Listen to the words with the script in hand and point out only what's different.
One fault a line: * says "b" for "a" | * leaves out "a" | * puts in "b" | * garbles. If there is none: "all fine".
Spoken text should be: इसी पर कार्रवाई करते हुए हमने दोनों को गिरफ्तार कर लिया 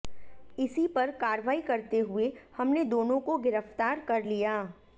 all fine